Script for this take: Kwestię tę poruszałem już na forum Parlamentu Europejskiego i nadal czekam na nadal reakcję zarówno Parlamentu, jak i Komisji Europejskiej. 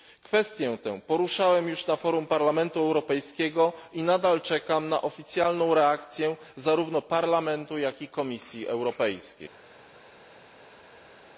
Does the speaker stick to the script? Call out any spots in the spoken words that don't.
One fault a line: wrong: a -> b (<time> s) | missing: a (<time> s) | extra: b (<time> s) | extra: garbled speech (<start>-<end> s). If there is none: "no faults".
wrong: nadal -> oficjalną (5.0 s)